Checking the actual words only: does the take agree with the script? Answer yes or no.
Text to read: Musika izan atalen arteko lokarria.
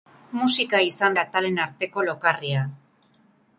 yes